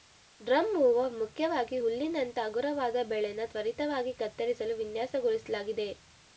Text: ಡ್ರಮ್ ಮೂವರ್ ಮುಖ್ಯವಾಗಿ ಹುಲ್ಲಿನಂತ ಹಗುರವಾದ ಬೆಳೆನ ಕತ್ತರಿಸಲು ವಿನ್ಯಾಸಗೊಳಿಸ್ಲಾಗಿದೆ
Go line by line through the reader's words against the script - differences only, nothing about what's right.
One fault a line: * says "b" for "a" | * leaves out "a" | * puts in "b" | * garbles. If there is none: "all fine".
* puts in "ತ್ವರಿತವಾಗಿ"